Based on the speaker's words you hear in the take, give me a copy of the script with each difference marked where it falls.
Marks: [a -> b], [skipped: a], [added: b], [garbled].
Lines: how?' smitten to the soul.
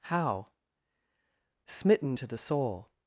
how?' smitten to the soul.